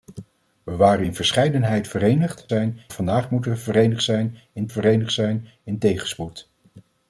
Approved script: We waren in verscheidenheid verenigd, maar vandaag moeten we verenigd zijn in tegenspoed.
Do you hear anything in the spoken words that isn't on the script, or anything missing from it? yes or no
yes